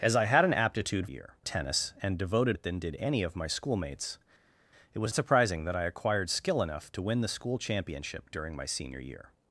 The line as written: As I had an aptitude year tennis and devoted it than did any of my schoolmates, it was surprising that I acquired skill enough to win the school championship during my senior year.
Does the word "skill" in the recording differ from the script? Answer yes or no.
no